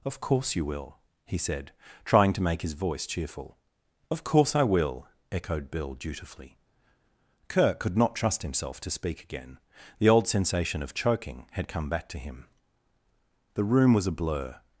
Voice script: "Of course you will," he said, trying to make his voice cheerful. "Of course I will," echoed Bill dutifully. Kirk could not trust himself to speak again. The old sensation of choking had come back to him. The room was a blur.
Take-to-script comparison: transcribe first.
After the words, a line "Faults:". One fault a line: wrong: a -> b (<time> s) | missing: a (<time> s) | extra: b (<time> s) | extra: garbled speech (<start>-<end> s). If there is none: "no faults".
"Of course you will," he said, trying to make his voice cheerful. "Of course I will," echoed Bill dutifully. Kirk could not trust himself to speak again. The old sensation of choking had come back to him. The room was a blur.
Faults:
no faults